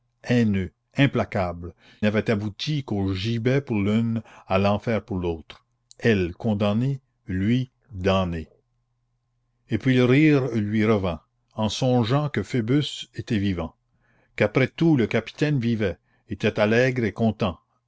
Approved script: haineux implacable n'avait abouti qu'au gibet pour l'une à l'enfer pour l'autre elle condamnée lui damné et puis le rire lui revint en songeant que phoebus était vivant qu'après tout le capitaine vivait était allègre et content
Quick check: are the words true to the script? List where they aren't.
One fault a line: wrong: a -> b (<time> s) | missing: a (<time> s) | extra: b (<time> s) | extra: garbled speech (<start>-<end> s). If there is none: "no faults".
no faults